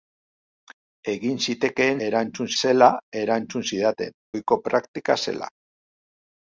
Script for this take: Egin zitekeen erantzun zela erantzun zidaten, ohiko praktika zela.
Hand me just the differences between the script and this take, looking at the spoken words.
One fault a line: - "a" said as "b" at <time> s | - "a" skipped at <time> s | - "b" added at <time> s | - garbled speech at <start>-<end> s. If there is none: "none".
none